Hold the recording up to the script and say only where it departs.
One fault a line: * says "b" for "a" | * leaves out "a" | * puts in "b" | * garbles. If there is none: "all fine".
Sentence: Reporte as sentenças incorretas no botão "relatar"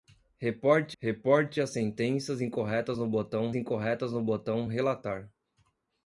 * puts in "reporte"
* puts in "incorretas no botão"